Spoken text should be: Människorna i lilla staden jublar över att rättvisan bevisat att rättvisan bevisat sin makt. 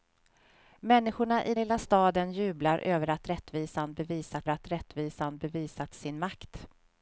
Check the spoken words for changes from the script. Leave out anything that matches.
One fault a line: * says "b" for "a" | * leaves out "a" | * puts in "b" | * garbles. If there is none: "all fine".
all fine